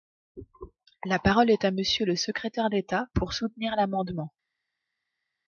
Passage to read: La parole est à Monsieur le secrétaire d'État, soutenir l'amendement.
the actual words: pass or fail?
fail